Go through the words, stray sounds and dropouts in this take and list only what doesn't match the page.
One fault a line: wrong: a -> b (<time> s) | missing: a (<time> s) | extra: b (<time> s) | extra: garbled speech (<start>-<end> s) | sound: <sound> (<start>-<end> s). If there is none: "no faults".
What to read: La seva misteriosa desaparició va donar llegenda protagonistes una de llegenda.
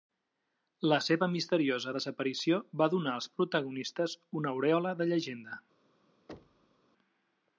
wrong: llegenda -> als (3.2 s)
extra: aurèola (4.6 s)
sound: thud (6.3-6.8 s)